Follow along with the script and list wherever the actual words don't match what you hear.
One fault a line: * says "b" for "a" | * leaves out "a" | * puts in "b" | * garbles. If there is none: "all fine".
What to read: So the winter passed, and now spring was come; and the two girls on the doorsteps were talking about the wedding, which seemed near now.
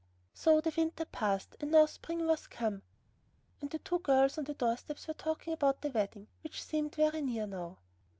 * puts in "very"